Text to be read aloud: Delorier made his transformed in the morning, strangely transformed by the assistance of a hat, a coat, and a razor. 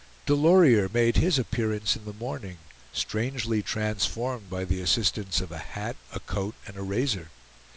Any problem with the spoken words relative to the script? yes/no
yes